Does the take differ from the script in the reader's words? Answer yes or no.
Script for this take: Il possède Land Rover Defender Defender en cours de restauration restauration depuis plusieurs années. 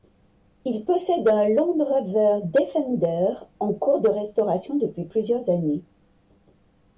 yes